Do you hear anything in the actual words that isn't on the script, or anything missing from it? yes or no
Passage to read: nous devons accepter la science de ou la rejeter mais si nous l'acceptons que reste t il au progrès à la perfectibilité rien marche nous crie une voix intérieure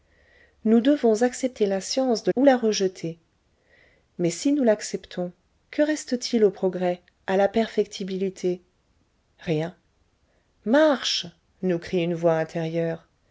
no